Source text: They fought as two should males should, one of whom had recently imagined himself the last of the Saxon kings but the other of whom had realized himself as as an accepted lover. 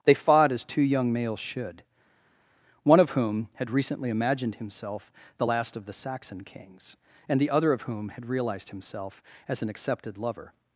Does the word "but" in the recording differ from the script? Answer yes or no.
yes